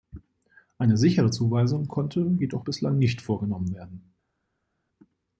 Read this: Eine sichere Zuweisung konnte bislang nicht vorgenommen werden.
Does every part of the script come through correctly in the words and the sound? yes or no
no